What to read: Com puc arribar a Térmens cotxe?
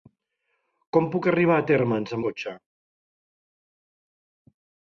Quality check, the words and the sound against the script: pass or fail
pass